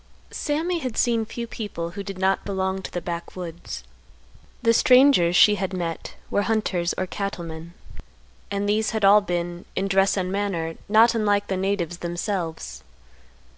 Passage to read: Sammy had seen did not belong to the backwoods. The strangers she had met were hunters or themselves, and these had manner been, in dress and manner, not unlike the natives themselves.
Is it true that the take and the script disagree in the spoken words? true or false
true